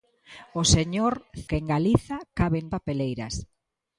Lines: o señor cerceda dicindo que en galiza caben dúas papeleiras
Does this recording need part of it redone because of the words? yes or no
yes